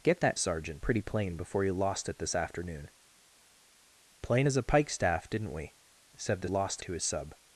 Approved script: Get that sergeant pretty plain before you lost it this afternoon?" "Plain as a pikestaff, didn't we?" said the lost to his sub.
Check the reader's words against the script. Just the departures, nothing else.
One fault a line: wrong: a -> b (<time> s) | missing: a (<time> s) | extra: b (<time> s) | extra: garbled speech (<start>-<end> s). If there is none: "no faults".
no faults